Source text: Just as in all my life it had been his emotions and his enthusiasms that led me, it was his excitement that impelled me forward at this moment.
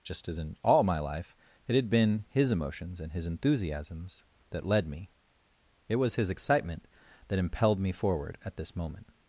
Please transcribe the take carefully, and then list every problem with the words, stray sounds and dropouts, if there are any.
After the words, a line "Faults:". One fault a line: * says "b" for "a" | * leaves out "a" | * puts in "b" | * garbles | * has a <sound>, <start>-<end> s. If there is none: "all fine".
Just as in all my life it had been his emotions and his enthusiasms that led me, it was his excitement that impelled me forward at this moment.
Faults:
all fine